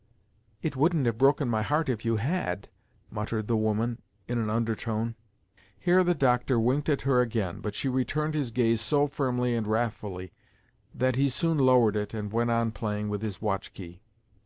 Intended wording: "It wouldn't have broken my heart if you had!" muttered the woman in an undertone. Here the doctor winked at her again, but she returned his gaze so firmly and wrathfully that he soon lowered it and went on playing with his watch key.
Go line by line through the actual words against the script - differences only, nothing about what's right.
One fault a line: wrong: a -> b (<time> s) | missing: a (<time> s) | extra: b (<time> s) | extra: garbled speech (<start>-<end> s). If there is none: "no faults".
no faults